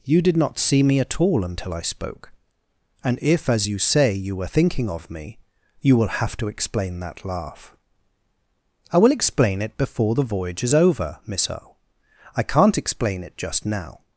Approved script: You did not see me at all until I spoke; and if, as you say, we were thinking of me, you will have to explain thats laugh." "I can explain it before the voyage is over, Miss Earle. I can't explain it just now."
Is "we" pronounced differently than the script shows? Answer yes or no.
yes